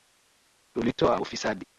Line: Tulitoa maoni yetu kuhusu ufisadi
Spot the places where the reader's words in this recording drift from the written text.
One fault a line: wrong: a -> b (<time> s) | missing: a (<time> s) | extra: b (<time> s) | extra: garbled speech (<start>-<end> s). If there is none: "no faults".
missing: maoni yetu kuhusu (1.2 s)